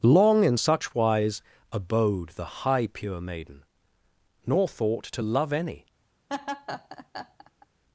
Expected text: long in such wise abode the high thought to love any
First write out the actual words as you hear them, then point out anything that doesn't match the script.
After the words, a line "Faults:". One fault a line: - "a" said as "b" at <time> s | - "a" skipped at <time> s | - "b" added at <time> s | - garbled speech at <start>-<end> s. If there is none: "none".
long in such wise abode the high pure maiden nor thought to love any
Faults:
- "pure maiden nor" added at 2.9 s